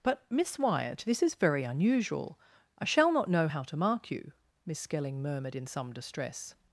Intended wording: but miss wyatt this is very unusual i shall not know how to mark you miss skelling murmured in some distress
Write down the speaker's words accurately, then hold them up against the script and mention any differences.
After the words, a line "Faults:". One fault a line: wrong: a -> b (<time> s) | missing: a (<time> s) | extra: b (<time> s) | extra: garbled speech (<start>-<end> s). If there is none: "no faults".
but miss wyatt this is very unusual i shall not know how to mark you miss skelling murmured in some distress
Faults:
no faults